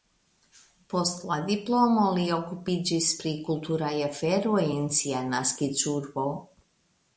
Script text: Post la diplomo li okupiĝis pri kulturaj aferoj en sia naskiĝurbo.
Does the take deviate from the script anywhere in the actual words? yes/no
no